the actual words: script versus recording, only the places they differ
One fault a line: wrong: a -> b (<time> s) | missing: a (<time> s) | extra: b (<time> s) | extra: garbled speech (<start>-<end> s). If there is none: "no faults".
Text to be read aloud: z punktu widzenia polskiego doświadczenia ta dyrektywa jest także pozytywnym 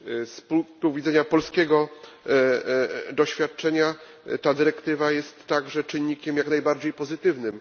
extra: czynnikiem jak najbardziej (5.8 s)